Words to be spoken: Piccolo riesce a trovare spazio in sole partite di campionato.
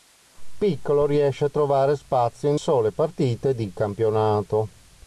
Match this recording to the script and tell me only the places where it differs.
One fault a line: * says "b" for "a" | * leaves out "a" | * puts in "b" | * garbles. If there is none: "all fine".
all fine